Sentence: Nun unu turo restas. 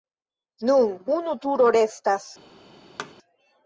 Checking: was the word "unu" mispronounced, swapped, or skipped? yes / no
no